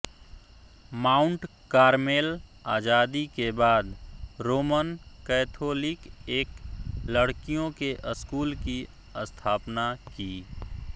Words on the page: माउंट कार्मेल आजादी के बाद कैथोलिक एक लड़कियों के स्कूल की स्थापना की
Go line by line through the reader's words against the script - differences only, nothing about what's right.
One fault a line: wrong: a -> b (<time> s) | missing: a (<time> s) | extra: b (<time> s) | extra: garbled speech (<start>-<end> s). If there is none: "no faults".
extra: रोमन (4.4 s)